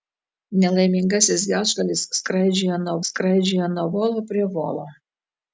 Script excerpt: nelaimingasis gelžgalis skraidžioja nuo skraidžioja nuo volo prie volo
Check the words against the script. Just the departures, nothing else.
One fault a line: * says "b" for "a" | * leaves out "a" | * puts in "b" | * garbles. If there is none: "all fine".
all fine